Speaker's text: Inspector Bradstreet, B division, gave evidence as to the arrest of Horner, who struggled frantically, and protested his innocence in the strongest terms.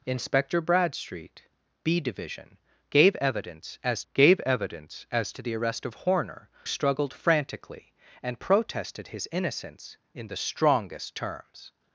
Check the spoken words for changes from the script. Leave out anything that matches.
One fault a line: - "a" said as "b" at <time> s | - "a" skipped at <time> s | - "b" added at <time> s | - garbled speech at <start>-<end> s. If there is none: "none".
- "gave evidence as" added at 4.1 s
- "who" skipped at 6.5 s